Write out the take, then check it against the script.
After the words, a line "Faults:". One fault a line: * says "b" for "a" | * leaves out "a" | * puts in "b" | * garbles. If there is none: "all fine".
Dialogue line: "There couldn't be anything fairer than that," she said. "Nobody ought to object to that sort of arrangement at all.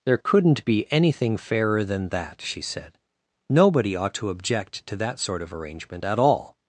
"There couldn't be anything fairer than that," she said. "Nobody ought to object to that sort of arrangement at all.
Faults:
all fine